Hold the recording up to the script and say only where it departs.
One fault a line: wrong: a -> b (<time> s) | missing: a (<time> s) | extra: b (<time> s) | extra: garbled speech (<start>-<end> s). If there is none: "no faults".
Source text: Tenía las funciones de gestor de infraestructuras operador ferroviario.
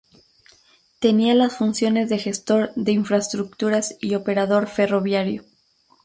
extra: y (4.0 s)